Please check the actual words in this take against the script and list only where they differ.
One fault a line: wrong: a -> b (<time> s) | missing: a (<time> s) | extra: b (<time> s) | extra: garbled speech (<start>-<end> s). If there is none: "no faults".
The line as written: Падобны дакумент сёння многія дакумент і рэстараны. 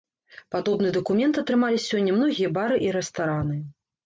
extra: атрымалі (1.4 s)
wrong: дакумент -> бары (2.6 s)